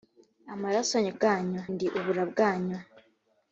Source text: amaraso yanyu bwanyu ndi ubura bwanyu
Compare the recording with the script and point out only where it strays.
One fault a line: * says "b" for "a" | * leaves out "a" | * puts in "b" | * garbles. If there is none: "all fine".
all fine